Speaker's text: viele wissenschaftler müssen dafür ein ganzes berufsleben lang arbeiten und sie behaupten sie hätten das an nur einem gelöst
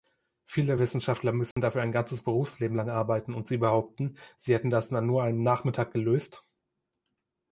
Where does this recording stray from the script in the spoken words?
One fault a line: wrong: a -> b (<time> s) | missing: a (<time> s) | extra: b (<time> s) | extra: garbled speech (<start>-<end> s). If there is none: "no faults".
extra: nachmittag (5.4 s)